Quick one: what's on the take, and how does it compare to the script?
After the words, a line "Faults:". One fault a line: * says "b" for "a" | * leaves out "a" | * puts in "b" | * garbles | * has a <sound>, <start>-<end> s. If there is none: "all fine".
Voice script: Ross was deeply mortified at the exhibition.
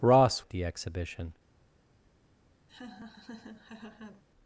Ross at the exhibition.
Faults:
* leaves out "was deeply mortified"
* has a laugh, 2.7-4.2 s